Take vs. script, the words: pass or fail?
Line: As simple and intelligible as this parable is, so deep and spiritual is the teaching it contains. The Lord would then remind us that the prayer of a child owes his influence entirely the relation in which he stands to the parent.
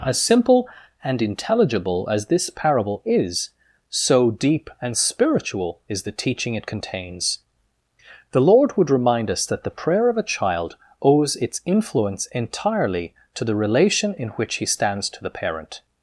fail